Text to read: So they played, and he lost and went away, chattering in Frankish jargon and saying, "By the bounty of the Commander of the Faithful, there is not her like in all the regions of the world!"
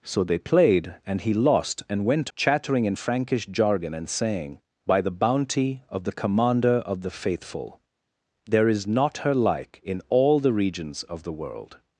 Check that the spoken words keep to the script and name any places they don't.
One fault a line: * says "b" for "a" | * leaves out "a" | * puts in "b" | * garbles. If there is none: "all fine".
* leaves out "away"